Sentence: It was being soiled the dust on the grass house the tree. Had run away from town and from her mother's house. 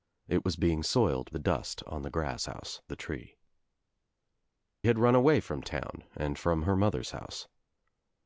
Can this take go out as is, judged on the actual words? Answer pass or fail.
pass